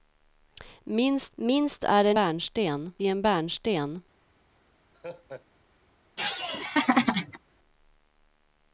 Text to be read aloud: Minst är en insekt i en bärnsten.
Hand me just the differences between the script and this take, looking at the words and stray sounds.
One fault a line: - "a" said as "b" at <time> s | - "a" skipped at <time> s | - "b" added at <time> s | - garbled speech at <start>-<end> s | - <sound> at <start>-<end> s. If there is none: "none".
- "minst" added at 1.3 s
- "insekt" said as "bärnsten" at 2.1 s
- laugh at 4.9-5.5 s
- laugh at 6.2-7.4 s